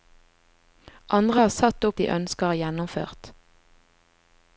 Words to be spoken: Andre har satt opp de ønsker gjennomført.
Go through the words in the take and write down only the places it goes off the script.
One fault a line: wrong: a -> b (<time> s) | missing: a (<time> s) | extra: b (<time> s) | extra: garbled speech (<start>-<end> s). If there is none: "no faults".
no faults